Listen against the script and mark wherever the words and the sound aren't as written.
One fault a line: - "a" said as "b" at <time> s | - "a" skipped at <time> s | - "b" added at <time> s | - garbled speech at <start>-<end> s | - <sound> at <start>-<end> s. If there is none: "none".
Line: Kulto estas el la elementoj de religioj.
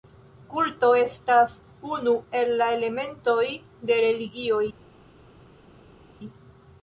- "unu" added at 2.0 s